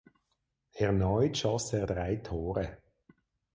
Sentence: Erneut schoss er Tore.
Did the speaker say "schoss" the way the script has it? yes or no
yes